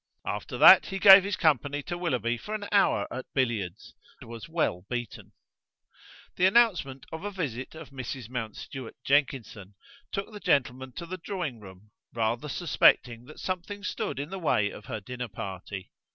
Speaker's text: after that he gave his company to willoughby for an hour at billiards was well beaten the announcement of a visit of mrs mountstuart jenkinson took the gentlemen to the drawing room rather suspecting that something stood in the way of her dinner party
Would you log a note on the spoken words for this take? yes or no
no